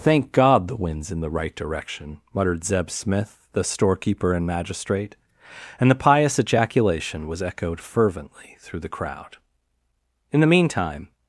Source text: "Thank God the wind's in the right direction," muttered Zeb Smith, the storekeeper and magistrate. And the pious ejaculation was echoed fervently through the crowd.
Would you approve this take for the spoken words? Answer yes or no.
no